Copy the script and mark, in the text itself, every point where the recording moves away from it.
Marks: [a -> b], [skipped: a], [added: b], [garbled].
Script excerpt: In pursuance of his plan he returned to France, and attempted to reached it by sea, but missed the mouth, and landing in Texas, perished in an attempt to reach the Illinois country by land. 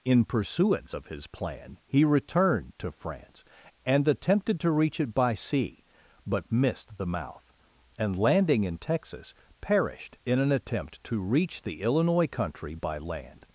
In pursuance of his plan he returned to France, and attempted to [reached -> reach] it by sea, but missed the mouth, and landing in Texas, perished in an attempt to reach the Illinois country by land.